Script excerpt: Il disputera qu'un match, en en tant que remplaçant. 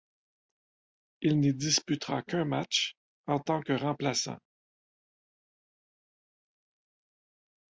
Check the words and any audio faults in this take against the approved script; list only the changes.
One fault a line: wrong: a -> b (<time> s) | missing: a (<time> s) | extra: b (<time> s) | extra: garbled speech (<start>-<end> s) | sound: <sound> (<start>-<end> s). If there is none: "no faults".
extra: n'y (1.4 s)
missing: en (3.4 s)